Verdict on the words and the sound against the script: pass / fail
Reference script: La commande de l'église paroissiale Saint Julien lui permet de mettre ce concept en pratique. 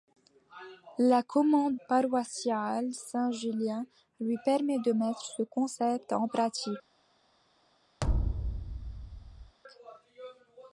fail